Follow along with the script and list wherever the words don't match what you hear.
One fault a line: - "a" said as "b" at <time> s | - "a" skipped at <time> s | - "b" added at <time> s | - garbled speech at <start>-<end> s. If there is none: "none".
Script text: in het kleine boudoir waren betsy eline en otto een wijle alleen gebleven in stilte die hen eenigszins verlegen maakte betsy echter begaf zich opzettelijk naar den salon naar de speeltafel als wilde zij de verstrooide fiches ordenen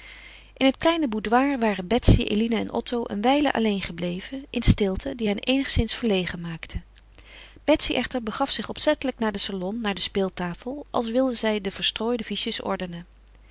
none